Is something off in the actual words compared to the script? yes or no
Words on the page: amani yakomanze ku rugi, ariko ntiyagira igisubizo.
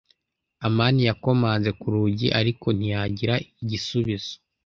no